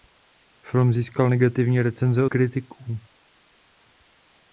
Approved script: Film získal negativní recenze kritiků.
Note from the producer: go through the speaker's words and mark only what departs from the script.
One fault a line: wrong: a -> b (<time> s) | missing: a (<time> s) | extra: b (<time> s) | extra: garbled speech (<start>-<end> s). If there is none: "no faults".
no faults